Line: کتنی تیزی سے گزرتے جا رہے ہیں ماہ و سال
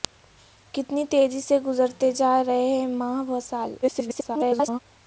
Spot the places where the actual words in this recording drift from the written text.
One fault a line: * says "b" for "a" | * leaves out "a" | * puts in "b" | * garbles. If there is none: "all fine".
* garbles